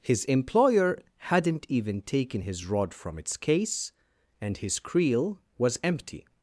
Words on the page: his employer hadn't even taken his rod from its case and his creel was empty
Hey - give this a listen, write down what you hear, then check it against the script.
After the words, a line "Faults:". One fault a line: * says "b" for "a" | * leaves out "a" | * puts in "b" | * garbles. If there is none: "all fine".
his employer hadn't even taken his rod from its case and his creel was empty
Faults:
all fine